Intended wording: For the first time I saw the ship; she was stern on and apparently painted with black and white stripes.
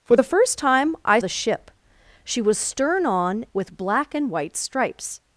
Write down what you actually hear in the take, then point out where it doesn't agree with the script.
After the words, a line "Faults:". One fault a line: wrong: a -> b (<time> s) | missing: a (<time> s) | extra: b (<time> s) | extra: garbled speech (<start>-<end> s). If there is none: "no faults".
For the first time I the ship; she was stern on with black and white stripes.
Faults:
missing: saw (1.2 s)
missing: and apparently painted (3.5 s)